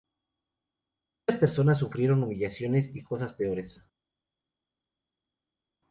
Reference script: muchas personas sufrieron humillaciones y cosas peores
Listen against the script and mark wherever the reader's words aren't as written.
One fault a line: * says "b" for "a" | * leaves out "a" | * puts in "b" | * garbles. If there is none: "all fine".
all fine